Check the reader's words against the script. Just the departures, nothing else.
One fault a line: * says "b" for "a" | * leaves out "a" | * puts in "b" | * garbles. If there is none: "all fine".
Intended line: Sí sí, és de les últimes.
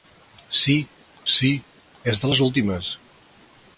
all fine